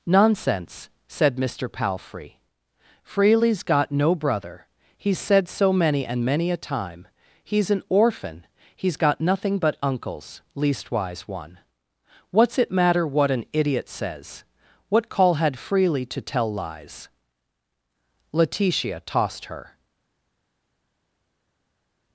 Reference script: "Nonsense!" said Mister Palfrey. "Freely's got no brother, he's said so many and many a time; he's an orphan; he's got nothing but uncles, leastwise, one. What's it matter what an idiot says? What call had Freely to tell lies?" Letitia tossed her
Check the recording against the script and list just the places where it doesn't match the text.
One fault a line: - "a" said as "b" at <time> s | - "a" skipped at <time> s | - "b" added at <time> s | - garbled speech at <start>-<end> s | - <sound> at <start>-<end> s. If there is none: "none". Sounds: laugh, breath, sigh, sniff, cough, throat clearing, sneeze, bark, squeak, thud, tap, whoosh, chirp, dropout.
none